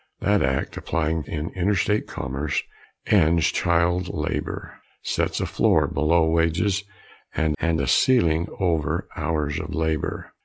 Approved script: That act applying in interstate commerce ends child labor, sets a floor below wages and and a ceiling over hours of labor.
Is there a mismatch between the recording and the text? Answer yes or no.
no